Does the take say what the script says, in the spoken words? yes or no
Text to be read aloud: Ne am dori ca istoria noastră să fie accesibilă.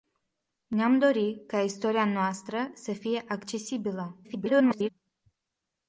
no